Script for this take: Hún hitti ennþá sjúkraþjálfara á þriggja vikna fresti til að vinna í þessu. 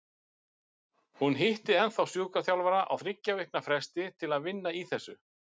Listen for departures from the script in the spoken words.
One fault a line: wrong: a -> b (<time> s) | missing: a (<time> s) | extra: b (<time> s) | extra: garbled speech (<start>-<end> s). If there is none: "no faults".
no faults